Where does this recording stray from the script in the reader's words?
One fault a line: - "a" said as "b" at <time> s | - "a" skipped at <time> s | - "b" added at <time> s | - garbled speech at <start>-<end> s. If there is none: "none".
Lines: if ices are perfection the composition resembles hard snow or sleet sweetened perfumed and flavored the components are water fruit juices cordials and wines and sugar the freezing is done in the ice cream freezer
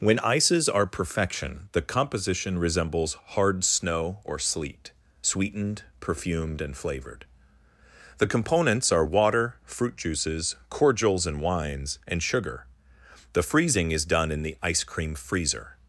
- "if" said as "when" at 0.0 s